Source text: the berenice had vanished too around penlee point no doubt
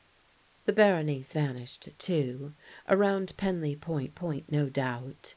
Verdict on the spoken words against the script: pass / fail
fail